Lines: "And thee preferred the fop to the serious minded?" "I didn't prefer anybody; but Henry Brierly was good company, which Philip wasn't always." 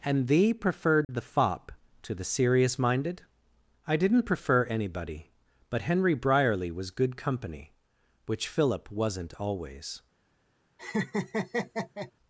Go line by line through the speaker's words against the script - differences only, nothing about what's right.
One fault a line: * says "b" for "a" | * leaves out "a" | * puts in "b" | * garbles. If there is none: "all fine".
all fine